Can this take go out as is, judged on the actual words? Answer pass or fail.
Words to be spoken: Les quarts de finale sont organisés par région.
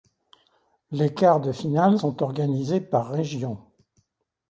pass